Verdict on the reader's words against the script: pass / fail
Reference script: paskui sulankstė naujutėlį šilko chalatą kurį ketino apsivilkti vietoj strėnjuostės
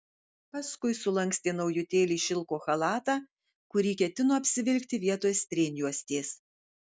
pass